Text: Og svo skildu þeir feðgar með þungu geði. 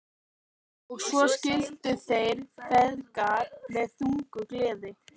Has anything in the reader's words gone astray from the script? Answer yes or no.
no